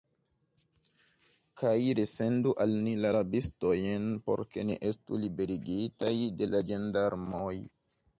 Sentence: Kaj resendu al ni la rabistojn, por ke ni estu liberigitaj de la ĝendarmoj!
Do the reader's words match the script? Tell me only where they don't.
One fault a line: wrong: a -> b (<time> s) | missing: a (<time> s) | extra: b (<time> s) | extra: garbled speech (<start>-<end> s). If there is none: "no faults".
no faults